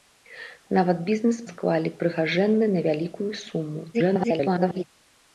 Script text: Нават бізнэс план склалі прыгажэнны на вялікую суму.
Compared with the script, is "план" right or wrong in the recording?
wrong